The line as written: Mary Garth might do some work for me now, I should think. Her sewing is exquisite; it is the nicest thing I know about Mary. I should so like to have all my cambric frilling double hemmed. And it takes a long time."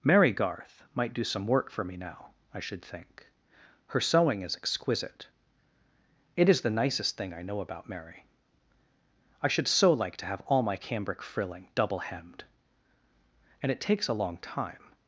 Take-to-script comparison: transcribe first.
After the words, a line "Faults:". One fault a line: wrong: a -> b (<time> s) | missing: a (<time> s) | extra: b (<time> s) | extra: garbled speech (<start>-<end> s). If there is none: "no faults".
Mary Garth might do some work for me now, I should think. Her sewing is exquisite; it is the nicest thing I know about Mary. I should so like to have all my cambric frilling double hemmed. And it takes a long time."
Faults:
no faults